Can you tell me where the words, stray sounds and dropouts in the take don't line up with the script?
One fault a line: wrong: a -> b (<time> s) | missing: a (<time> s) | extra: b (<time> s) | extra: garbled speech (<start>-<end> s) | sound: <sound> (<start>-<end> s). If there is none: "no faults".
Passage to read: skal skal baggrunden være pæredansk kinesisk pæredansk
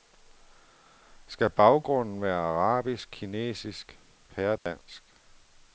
missing: skal (1.5 s)
wrong: pæredansk -> arabisk (2.4 s)
sound: dropout (4.6-4.7 s)